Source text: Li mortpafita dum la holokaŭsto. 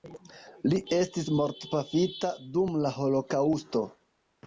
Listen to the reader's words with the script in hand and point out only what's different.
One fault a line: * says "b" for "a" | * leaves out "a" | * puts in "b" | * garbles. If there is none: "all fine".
* puts in "estis"